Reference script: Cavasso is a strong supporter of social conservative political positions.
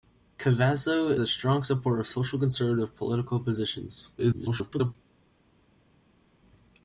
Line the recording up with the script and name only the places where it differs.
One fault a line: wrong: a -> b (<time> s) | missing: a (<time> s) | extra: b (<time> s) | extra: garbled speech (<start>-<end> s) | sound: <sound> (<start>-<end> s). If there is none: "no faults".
missing: is (1.1 s)
extra: garbled speech (4.2-4.9 s)